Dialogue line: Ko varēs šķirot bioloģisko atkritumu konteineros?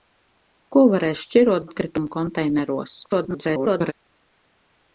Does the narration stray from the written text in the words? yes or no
yes